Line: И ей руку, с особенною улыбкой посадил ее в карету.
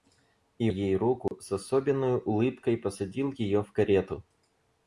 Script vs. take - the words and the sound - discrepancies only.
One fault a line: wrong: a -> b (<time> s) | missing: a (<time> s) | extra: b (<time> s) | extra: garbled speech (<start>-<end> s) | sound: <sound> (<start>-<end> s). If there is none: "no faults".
sound: dropout (1.3-1.3 s)